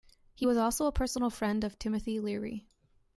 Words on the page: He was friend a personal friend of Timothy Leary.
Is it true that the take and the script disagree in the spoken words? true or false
true